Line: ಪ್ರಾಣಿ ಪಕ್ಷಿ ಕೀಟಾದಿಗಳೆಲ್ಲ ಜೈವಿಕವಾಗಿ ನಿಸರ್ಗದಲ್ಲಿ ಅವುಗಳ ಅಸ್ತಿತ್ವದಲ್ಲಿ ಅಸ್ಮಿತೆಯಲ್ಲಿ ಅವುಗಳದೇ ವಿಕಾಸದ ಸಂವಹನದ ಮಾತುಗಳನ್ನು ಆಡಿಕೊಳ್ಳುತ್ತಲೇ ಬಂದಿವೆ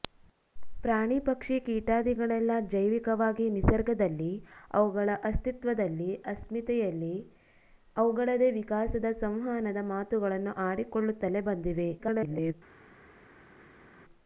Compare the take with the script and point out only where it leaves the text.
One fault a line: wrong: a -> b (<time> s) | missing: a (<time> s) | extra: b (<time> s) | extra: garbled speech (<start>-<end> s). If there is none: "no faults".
extra: garbled speech (12.0-12.5 s)